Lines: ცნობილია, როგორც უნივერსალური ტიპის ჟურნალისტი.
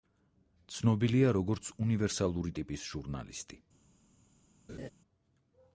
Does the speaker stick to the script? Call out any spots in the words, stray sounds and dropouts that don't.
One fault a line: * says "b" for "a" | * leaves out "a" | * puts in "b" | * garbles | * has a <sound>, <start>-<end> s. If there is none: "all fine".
* has a laugh, 4.7-4.9 s